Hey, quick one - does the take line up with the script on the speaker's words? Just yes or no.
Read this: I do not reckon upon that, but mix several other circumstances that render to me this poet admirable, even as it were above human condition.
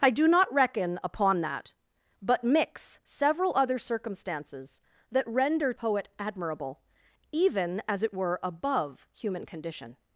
no